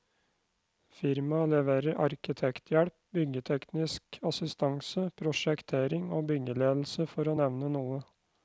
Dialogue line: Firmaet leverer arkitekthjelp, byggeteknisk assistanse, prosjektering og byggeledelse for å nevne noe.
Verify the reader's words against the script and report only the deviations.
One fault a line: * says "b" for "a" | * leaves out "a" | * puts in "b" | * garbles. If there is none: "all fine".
all fine